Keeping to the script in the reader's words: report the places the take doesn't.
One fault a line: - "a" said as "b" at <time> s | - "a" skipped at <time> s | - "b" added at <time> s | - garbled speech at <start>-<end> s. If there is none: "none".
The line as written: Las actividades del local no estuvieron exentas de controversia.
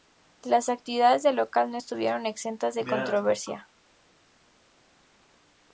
none